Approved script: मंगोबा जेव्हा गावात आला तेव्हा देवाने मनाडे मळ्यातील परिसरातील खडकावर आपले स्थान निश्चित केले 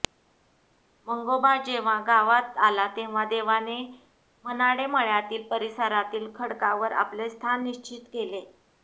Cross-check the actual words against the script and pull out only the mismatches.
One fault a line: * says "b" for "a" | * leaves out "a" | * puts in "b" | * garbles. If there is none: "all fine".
all fine